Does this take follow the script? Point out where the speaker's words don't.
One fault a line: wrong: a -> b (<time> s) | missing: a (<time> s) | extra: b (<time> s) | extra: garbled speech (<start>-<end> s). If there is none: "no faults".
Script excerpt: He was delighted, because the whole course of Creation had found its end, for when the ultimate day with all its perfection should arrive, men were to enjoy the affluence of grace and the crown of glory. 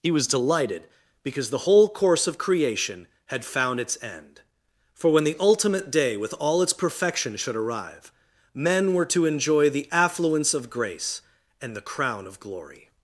no faults